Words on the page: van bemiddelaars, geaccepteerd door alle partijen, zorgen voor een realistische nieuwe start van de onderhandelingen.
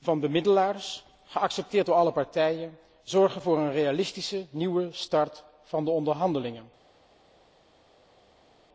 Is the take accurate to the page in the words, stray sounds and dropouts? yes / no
yes